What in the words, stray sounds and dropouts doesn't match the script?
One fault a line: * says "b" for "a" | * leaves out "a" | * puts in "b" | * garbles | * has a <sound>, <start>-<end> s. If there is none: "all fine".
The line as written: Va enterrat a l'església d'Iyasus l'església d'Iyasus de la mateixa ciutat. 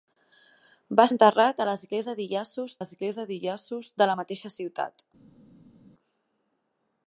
all fine